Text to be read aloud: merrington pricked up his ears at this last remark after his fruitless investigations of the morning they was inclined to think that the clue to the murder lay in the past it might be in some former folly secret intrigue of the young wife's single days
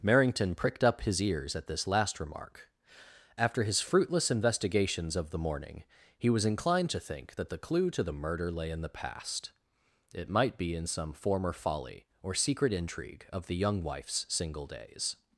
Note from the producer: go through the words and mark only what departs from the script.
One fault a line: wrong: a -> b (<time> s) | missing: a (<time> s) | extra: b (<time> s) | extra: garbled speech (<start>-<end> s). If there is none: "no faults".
wrong: they -> he (6.2 s)
extra: or (12.2 s)